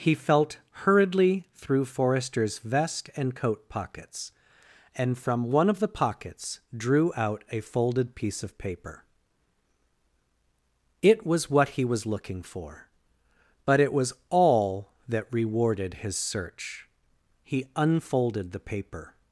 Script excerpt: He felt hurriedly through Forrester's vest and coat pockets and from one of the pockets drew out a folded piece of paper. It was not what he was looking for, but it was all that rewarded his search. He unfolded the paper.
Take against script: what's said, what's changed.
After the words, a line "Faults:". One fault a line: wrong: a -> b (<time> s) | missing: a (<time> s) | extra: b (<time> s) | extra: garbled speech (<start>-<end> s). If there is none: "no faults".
He felt hurriedly through Forrester's vest and coat pockets and from one of the pockets drew out a folded piece of paper. It was what he was looking for, but it was all that rewarded his search. He unfolded the paper.
Faults:
missing: not (11.5 s)